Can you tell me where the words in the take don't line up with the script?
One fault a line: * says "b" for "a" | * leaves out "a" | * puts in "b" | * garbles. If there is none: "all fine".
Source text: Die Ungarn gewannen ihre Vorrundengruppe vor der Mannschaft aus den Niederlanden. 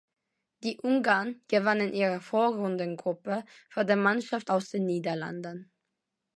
all fine